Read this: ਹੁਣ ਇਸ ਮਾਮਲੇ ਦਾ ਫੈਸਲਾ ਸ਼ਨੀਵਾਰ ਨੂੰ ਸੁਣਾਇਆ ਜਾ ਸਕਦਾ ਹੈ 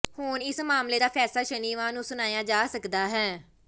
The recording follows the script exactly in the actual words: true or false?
true